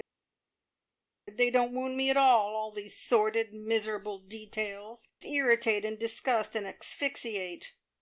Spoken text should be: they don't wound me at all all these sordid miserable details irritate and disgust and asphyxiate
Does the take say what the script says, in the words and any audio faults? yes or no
yes